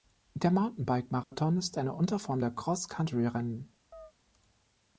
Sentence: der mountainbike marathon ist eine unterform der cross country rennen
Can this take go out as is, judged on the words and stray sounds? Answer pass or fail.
fail